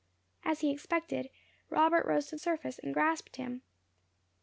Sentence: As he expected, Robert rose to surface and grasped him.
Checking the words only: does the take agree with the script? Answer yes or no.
yes